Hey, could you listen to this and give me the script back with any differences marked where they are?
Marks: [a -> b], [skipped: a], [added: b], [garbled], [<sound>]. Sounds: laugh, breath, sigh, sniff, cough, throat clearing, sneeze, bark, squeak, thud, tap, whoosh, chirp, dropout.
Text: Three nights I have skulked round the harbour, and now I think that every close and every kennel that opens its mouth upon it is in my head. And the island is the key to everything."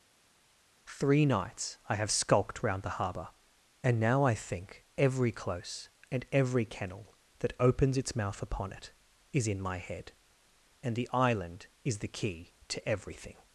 Three nights I have skulked round the harbour, and now I think [skipped: that] every close and every kennel that opens its mouth upon it is in my head. And the island is the key to everything."